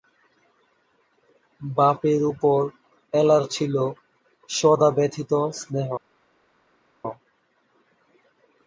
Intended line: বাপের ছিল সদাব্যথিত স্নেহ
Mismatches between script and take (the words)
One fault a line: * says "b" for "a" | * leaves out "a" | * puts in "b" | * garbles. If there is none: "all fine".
* puts in "উপর এলার"